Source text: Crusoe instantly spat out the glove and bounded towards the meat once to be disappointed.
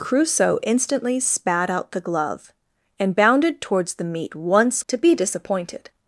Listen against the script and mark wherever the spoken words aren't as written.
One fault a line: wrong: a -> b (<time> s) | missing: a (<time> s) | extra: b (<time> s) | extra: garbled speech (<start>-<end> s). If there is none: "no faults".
no faults